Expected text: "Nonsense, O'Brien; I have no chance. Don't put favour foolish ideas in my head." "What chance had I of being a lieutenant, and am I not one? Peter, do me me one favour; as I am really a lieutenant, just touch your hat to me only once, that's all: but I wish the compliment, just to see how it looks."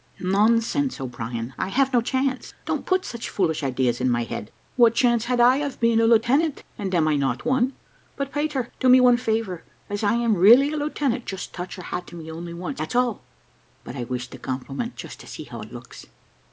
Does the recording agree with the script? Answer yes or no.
no